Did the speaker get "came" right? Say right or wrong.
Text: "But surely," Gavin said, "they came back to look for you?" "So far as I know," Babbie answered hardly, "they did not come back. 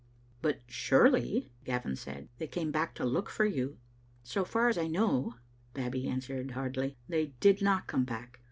right